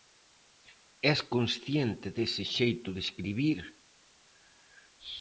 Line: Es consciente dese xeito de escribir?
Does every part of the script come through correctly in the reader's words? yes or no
yes